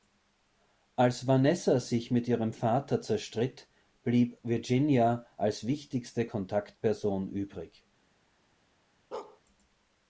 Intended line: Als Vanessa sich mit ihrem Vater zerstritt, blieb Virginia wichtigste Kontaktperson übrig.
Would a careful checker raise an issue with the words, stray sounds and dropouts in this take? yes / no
yes